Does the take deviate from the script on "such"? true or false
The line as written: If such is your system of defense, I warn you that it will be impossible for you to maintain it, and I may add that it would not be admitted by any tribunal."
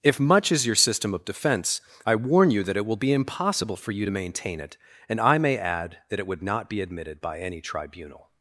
true